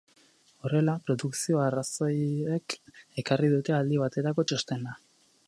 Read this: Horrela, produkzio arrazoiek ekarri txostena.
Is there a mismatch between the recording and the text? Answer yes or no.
yes